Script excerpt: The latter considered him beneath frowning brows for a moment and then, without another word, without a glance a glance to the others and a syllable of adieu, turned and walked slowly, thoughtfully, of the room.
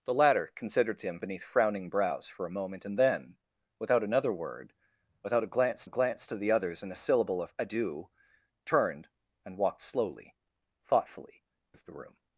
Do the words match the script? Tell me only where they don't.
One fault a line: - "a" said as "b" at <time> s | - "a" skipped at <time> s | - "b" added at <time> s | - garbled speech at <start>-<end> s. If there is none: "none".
none